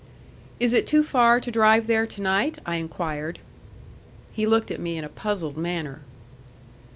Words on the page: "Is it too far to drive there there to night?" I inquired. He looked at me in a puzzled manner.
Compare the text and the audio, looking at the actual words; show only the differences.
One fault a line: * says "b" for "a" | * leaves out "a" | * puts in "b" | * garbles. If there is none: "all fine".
* leaves out "there"